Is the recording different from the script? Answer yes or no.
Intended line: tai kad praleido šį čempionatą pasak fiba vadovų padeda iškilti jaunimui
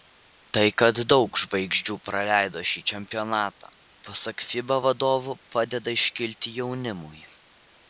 yes